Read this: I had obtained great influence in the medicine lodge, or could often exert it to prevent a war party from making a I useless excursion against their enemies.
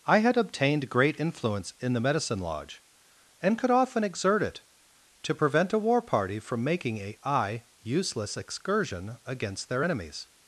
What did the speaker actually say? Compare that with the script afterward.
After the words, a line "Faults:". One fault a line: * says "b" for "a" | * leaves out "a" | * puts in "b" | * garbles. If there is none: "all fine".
I had obtained great influence in the medicine lodge, and could often exert it to prevent a war party from making a I useless excursion against their enemies.
Faults:
* says "and" for "or"